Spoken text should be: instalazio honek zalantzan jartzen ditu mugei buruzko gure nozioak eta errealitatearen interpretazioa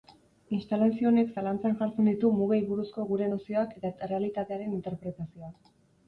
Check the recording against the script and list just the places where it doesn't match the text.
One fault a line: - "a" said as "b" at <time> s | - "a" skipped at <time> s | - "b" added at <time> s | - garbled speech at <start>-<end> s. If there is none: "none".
none